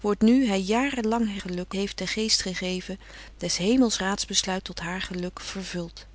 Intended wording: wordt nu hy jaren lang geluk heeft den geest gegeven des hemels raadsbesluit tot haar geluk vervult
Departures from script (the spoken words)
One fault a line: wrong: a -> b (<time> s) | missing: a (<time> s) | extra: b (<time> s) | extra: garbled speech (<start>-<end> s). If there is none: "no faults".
no faults